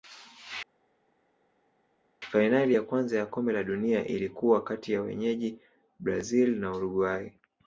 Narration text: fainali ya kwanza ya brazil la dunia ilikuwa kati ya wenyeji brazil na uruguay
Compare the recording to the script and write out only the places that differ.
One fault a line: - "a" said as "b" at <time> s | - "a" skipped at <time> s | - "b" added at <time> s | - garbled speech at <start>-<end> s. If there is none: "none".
- "brazil" said as "kombe" at 3.3 s